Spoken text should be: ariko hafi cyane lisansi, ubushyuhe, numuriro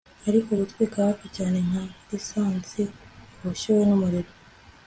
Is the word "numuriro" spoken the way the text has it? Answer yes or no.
yes